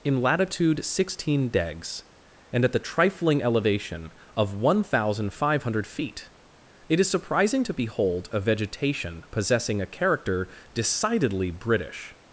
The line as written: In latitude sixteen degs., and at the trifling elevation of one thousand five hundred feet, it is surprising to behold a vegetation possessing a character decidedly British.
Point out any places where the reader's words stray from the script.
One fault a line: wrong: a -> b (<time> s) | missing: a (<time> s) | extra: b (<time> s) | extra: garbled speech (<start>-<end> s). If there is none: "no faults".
no faults